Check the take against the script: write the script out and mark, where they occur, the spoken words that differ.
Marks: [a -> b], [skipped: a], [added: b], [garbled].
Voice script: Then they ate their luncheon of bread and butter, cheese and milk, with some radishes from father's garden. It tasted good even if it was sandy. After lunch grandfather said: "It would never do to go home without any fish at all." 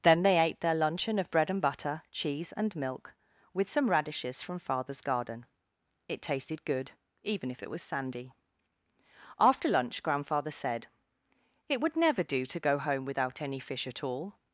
Then they ate their luncheon of bread and butter, cheese and milk, with some radishes from father's garden. It tasted good even if it was sandy. After lunch grandfather said: "It would never do to go home without any fish at all."